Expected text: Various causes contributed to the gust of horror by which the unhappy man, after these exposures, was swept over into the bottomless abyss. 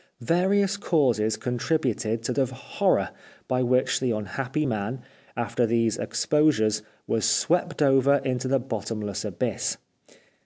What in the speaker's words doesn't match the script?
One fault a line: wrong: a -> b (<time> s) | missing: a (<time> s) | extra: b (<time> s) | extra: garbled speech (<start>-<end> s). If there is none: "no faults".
missing: the gust (2.3 s)